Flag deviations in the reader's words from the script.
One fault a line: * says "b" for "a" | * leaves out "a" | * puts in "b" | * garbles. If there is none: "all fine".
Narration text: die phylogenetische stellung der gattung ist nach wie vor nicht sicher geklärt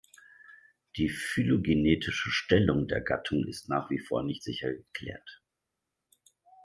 all fine